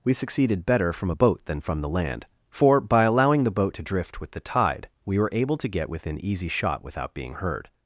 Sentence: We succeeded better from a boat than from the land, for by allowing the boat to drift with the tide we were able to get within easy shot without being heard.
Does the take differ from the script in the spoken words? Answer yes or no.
no